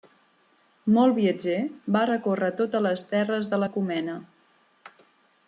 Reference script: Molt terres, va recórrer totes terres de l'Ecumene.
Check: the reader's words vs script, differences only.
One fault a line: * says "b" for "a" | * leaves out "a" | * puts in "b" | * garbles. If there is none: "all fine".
* says "viatger" for "terres"
* puts in "les"